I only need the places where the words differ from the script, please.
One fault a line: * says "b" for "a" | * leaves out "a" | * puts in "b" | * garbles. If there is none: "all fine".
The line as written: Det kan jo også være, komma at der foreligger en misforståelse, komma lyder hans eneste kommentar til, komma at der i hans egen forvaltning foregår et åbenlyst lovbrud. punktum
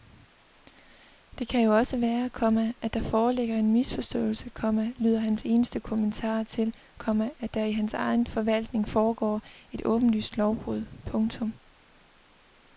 all fine